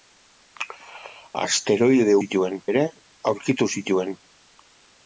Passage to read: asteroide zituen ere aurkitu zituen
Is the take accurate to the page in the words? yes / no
yes